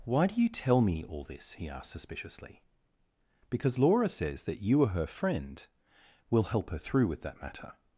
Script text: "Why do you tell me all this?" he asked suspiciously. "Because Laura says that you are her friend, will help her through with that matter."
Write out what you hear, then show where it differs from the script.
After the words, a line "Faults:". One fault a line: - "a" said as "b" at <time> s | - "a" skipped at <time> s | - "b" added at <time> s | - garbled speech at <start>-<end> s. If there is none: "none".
"Why do you tell me all this?" he asked suspiciously. "Because Laura says that you are her friend, will help her through with that matter."
Faults:
none